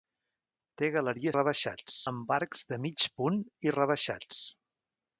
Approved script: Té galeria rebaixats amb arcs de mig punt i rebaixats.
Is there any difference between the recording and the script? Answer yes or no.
no